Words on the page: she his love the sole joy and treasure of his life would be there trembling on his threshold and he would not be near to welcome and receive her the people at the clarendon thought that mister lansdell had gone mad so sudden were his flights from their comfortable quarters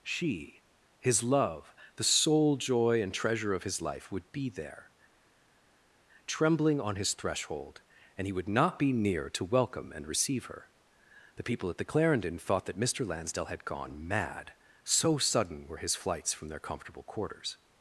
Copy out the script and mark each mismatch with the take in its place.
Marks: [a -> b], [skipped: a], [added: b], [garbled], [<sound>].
she his love the sole joy and treasure of his life would be there trembling on his threshold and he would not be near to welcome and receive her the people at the clarendon thought that mister lansdell had gone mad so sudden were his flights from their comfortable quarters